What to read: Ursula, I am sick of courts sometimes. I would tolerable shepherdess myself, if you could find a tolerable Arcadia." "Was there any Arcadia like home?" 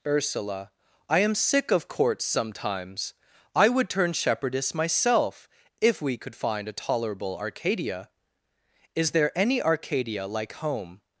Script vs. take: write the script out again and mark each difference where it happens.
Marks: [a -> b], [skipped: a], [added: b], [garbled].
Ursula, I am sick of courts sometimes. I would [tolerable -> turn] shepherdess myself, if [you -> we] could find a tolerable Arcadia." ["Was -> Is] there any Arcadia like home?"